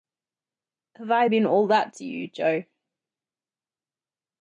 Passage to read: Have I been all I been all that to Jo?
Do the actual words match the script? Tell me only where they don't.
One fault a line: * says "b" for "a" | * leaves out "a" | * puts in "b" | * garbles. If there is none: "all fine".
* leaves out "I been all"
* puts in "you"